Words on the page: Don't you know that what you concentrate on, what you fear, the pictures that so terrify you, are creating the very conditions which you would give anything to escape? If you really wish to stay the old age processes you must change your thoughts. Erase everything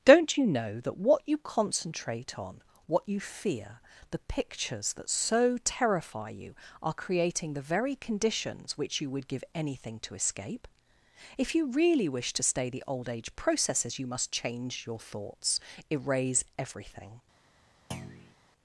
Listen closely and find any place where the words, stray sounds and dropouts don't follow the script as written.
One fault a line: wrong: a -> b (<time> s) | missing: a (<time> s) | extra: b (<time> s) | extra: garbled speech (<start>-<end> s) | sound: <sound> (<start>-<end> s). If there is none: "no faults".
sound: thud (17.9-18.4 s)